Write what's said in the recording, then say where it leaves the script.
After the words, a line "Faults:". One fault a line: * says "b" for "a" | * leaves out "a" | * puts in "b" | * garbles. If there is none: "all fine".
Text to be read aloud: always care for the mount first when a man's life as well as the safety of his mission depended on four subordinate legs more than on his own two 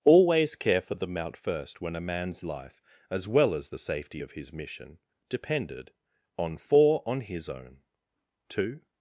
always care for the mount first when a man's life as well as the safety of his mission depended on four on his own two
Faults:
* leaves out "subordinate legs more than"